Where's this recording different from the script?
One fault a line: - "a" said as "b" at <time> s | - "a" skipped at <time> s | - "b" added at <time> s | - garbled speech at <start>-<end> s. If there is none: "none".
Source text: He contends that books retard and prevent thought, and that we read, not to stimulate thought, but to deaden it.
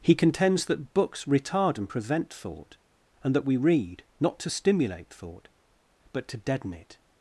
none